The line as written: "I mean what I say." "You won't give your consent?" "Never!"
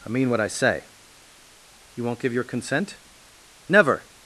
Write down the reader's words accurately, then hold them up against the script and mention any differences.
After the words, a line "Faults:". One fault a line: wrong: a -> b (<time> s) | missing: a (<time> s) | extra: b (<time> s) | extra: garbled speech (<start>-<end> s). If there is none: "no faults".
"I mean what I say." "You won't give your consent?" "Never!"
Faults:
no faults